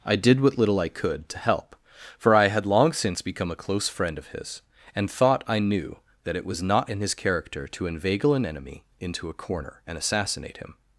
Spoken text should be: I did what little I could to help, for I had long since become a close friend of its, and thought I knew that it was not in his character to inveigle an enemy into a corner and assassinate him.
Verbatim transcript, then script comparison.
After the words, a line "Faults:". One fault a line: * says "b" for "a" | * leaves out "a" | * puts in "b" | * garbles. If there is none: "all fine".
I did what little I could to help, for I had long since become a close friend of his, and thought I knew that it was not in his character to inveigle an enemy into a corner and assassinate him.
Faults:
* says "his" for "its"